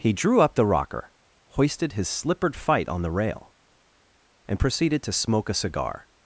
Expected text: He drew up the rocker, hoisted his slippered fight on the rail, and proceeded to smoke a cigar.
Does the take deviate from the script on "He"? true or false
false